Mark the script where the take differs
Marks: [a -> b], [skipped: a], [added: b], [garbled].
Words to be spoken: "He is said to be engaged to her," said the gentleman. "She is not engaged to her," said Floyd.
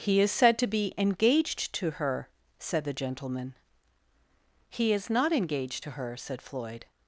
"He is said to be engaged to her," said the gentleman. ["She -> He] is not engaged to her," said Floyd.